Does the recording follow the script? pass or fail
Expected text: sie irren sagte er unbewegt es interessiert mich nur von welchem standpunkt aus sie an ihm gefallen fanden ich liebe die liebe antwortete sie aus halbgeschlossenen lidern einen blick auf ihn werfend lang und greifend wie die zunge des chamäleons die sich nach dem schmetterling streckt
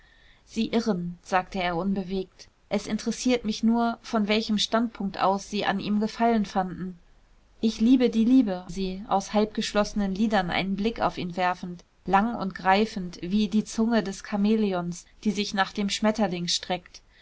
fail